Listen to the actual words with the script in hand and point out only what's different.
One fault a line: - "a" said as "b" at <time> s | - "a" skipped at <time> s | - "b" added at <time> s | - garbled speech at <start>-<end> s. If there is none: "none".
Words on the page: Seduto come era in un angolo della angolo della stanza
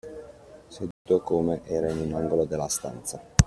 - "angolo della" skipped at 2.7 s